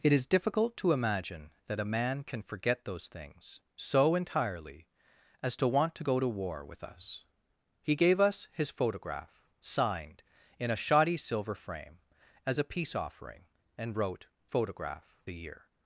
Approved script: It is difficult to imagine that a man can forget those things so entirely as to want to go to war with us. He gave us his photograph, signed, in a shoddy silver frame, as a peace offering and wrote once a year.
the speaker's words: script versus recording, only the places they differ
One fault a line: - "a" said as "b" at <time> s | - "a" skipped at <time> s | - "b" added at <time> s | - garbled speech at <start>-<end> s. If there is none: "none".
- "once" said as "photograph" at 14.5 s